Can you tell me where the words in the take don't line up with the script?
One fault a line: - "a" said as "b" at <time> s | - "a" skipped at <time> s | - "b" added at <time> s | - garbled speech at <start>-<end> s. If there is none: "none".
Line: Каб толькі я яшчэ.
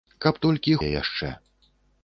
none